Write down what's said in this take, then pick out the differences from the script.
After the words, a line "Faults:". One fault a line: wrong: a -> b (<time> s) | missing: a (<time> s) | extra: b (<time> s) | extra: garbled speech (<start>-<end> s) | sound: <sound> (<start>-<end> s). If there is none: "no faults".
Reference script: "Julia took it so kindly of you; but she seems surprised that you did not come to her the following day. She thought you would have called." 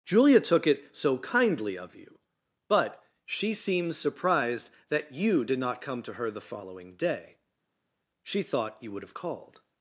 "Julia took it so kindly of you; but she seems surprised that you did not come to her the following day. She thought you would have called."
Faults:
no faults